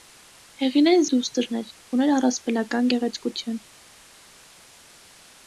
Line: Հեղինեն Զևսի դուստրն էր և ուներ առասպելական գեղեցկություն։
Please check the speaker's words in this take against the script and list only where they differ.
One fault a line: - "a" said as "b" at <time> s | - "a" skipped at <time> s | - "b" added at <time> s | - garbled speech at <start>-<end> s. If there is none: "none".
- "Զևսի" skipped at 1.0 s
- "և" skipped at 1.7 s